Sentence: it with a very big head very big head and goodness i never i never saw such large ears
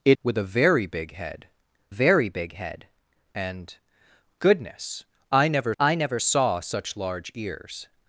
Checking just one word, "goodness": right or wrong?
right